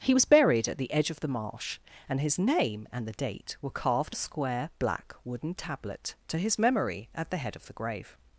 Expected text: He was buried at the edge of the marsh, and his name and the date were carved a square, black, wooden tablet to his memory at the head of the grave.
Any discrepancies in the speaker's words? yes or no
no